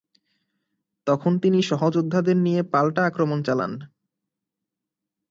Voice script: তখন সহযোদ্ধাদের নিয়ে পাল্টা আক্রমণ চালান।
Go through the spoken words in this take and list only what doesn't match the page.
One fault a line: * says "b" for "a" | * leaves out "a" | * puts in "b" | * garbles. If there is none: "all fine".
* puts in "তিনি"